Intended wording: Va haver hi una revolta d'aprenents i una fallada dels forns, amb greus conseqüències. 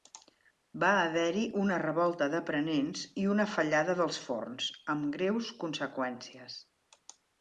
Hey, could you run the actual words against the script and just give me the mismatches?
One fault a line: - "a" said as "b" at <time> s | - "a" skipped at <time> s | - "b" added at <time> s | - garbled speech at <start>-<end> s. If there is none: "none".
none